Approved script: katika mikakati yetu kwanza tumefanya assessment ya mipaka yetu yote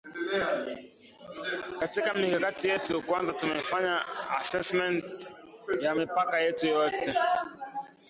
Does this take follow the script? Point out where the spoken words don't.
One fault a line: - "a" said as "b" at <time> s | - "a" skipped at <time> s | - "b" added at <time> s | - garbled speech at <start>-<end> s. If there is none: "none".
none